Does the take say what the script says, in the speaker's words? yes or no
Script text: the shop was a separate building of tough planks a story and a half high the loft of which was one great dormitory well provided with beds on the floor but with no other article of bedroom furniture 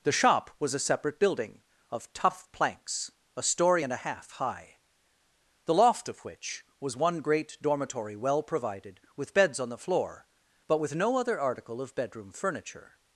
yes